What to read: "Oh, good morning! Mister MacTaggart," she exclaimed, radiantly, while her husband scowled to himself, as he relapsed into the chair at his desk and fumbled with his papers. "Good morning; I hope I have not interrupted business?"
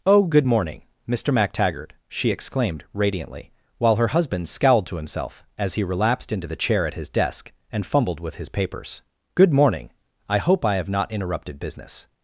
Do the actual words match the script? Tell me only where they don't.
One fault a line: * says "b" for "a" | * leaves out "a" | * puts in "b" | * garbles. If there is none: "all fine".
all fine